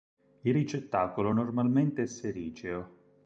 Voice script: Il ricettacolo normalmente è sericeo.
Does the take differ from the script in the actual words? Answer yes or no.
no